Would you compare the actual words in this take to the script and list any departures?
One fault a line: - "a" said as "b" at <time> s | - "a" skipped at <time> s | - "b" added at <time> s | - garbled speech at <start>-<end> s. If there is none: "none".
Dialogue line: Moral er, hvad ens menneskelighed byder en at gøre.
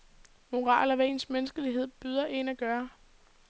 none